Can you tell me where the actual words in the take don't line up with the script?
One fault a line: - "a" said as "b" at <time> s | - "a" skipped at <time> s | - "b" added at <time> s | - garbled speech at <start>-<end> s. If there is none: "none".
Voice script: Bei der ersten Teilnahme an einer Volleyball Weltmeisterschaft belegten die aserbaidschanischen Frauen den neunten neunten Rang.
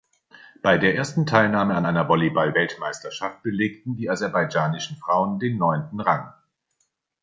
- "neunten" skipped at 6.0 s